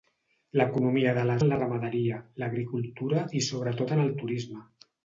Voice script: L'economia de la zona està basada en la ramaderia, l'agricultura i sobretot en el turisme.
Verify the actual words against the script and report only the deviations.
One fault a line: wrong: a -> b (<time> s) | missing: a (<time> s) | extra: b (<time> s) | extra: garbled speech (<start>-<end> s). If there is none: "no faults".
missing: zona està basada (1.4 s)